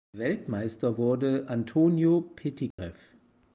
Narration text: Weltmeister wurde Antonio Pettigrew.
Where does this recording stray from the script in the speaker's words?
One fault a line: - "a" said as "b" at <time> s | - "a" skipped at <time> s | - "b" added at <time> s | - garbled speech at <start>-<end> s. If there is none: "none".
none